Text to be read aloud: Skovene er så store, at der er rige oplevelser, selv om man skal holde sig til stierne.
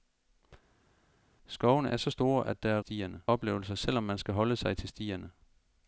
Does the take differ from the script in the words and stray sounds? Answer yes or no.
yes